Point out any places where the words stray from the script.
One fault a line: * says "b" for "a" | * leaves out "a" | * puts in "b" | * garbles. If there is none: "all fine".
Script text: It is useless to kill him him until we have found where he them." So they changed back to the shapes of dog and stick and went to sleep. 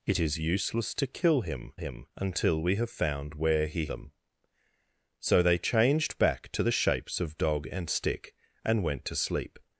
all fine